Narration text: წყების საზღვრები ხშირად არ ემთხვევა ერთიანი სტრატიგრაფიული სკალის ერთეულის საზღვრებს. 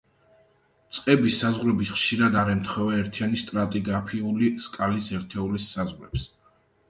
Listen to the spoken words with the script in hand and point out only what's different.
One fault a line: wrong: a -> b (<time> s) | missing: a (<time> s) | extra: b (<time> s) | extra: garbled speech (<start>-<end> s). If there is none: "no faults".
no faults